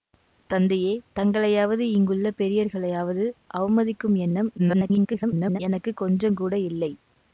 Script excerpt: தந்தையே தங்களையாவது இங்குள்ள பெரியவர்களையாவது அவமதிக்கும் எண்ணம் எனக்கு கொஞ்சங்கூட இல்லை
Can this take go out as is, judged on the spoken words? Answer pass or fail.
fail